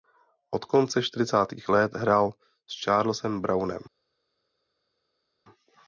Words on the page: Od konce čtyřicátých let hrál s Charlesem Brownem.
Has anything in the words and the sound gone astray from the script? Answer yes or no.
no